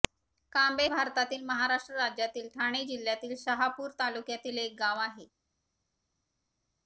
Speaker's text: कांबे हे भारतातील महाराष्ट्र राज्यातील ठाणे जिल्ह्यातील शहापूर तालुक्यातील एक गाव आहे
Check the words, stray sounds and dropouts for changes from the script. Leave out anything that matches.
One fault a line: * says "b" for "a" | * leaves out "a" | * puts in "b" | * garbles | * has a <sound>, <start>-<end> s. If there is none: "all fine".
* leaves out "हे"